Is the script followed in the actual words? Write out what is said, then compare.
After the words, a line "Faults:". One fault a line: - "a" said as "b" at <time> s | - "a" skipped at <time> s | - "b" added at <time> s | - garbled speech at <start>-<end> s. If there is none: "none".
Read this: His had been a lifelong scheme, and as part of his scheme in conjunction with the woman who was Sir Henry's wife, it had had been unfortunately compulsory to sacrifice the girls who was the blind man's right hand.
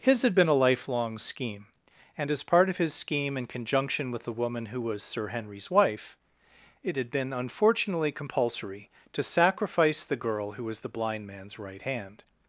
His had been a lifelong scheme, and as part of his scheme in conjunction with the woman who was Sir Henry's wife, it had been unfortunately compulsory to sacrifice the girl who was the blind man's right hand.
Faults:
- "had" skipped at 7.1 s
- "girls" said as "girl" at 10.2 s